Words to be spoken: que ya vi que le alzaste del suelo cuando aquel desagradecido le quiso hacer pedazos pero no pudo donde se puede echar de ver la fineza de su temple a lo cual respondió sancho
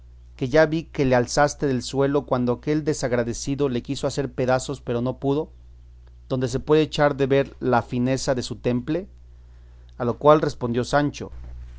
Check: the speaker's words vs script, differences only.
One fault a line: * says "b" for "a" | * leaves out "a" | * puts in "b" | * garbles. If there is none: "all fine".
all fine